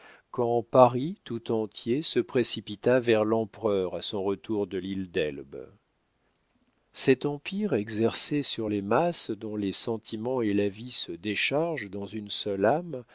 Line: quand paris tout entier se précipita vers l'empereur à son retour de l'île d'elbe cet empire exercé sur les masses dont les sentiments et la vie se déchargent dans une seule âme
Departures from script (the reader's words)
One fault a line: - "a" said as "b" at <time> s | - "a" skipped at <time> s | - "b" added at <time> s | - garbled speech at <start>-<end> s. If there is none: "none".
none